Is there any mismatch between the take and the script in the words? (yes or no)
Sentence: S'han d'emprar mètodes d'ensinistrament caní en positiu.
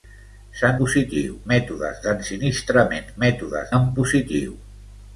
yes